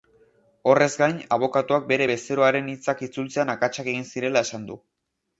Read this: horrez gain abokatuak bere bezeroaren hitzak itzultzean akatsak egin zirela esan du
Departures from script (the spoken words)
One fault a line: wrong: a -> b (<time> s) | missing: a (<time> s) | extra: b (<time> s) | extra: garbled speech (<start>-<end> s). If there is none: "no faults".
no faults